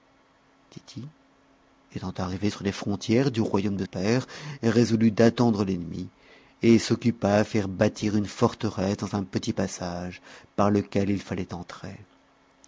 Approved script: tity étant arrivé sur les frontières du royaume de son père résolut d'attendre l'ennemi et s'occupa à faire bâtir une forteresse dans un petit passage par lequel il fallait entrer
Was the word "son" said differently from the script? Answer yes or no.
yes